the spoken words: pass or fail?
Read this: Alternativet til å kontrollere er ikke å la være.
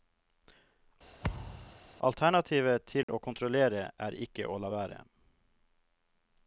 pass